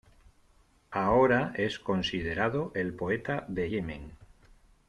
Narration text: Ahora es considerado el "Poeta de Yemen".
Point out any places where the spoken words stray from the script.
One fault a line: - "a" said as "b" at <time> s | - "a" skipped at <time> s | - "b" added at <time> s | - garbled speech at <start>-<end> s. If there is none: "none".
none